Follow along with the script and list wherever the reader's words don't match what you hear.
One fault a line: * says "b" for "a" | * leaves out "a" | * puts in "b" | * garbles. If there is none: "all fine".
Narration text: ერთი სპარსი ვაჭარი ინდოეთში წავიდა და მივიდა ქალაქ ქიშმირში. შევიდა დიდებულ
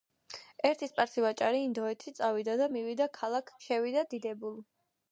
* leaves out "ქიშმირში"